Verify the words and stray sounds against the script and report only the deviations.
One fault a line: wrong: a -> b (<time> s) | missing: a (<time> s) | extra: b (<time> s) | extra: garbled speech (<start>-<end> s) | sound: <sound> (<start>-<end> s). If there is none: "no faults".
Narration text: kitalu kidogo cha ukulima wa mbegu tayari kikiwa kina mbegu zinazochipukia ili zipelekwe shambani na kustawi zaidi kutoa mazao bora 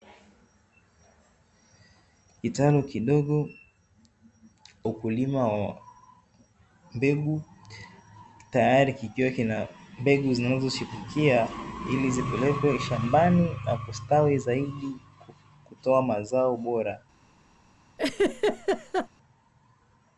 missing: cha (3.5 s)
sound: laugh (18.0-19.1 s)